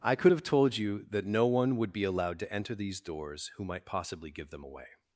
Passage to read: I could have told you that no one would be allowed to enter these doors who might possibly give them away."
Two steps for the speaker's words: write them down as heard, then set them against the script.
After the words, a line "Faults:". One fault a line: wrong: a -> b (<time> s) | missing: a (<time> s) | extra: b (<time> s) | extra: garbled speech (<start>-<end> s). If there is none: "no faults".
I could have told you that no one would be allowed to enter these doors who might possibly give them away."
Faults:
no faults